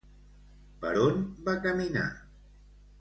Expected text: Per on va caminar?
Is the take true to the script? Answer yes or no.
yes